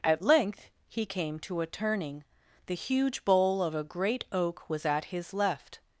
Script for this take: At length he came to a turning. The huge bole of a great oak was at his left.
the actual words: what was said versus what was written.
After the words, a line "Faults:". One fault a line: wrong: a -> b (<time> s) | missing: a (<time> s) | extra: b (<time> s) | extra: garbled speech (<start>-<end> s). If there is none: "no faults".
At length he came to a turning. The huge bole of a great oak was at his left.
Faults:
no faults